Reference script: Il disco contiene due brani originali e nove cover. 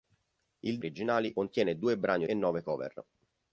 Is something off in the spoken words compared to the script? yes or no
yes